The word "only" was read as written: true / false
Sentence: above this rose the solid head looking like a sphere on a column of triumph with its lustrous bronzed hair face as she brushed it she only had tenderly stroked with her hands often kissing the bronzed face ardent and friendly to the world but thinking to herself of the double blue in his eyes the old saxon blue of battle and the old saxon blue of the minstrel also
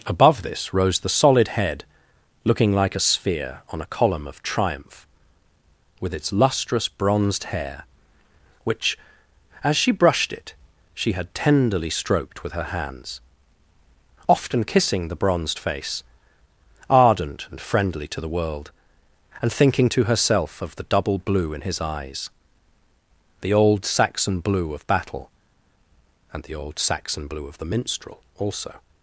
false